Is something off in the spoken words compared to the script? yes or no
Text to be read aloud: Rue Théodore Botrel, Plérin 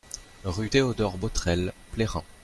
no